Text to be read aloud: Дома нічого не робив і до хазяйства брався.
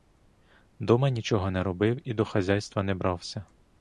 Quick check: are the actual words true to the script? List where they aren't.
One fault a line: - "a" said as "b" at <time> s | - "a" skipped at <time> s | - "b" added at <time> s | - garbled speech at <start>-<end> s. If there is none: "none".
- "не" added at 2.8 s